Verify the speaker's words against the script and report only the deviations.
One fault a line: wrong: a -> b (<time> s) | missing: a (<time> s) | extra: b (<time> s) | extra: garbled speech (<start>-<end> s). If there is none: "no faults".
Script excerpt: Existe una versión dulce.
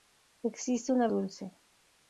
missing: versión (1.1 s)